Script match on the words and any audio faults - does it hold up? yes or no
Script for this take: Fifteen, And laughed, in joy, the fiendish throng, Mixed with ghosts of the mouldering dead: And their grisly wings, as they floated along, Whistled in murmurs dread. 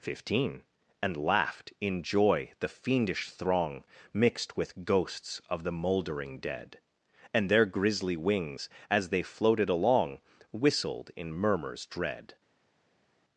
yes